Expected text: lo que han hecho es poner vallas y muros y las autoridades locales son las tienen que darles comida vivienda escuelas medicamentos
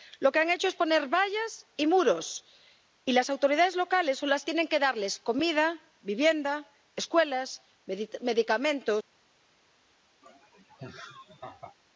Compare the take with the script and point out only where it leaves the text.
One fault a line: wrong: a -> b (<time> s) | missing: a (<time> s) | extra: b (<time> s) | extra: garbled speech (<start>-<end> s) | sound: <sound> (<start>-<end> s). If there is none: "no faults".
sound: laugh (10.2-11.8 s)